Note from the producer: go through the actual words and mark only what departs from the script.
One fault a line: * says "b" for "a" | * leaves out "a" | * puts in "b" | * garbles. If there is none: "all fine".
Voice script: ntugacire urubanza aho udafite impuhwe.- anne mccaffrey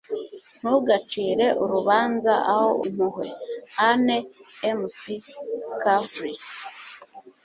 * leaves out "udafite"